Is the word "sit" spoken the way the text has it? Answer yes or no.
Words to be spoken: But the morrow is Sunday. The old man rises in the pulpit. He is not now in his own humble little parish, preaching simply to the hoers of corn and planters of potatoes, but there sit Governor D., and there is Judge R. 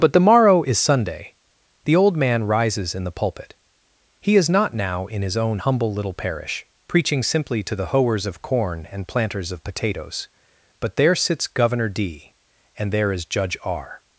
no